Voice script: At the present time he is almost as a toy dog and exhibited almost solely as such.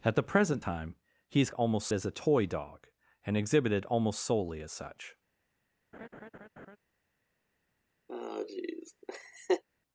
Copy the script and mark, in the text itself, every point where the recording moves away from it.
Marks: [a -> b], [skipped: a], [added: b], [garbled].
At the present time he is almost as a toy dog and exhibited almost solely as such.